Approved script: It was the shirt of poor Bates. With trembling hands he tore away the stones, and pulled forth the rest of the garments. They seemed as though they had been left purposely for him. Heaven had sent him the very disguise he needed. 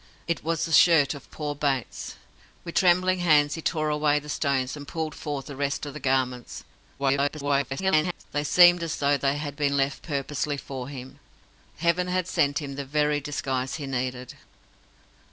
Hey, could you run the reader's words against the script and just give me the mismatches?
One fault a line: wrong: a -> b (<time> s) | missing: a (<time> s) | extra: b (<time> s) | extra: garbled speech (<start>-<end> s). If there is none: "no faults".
extra: garbled speech (7.0-8.2 s)